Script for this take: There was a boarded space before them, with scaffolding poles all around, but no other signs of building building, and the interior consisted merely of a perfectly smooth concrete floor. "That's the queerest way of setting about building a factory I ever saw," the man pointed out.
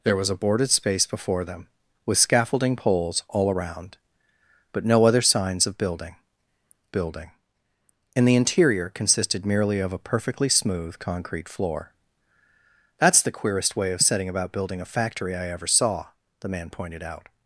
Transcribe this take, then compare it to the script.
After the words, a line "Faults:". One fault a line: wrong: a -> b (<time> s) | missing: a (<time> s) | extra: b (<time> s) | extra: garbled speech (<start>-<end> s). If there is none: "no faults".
There was a boarded space before them, with scaffolding poles all around, but no other signs of building building, and the interior consisted merely of a perfectly smooth concrete floor. "That's the queerest way of setting about building a factory I ever saw," the man pointed out.
Faults:
no faults